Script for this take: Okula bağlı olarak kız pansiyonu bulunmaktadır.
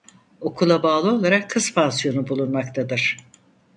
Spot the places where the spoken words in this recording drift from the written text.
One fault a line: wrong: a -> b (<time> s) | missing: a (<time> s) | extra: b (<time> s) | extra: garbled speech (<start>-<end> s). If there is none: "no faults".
no faults